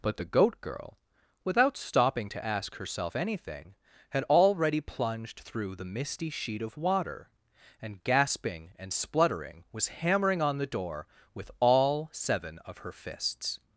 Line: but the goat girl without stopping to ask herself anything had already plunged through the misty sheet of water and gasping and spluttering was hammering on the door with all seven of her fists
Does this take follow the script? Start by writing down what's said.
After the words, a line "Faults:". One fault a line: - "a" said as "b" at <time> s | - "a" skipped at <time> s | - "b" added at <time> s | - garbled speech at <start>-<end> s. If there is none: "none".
but the goat girl without stopping to ask herself anything had already plunged through the misty sheet of water and gasping and spluttering was hammering on the door with all seven of her fists
Faults:
none